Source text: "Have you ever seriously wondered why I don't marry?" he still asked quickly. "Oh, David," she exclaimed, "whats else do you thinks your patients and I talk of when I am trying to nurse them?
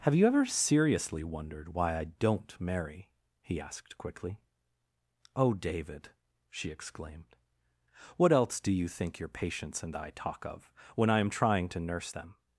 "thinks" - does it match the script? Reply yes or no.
no